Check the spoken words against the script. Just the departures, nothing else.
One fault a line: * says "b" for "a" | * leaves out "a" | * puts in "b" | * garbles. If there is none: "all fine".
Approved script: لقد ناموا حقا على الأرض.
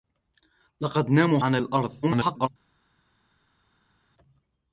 * leaves out "حقا"
* garbles